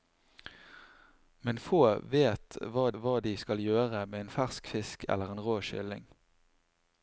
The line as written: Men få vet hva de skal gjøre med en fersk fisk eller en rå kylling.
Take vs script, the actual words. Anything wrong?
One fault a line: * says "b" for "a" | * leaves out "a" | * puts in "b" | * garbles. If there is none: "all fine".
* puts in "hva"